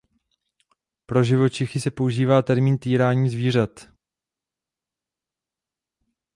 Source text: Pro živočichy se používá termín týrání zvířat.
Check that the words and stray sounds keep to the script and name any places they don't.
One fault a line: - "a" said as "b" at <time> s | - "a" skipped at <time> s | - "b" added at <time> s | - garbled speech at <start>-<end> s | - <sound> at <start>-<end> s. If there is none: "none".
none